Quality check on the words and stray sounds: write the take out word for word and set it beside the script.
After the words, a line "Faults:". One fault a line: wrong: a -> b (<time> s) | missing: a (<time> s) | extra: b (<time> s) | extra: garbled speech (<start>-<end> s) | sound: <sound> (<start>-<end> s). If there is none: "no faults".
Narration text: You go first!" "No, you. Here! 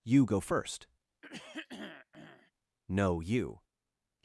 You go first!" "No, you!
Faults:
sound: throat clearing (1.2-2.5 s)
missing: Here (3.6 s)